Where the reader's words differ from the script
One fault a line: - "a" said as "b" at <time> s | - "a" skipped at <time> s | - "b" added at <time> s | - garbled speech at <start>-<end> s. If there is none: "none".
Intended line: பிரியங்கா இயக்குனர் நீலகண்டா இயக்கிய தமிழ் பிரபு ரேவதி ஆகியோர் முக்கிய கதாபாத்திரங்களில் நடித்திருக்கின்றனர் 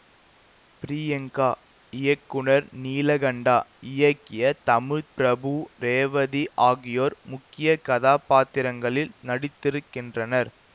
none